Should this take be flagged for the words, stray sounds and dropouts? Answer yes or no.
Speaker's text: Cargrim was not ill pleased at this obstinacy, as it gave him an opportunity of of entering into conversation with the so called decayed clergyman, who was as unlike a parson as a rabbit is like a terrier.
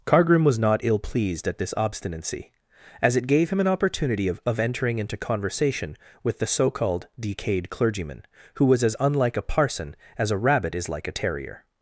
no